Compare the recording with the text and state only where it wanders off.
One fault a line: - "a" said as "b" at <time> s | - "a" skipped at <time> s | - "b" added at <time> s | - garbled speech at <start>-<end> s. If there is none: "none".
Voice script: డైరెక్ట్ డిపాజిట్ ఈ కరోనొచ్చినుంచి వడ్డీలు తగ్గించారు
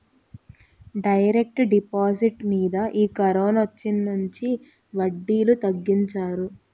- "మీద" added at 2.5 s